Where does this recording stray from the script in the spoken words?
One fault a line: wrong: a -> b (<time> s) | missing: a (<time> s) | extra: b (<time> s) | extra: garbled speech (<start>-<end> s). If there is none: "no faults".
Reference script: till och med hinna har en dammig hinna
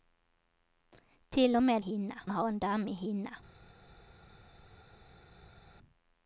no faults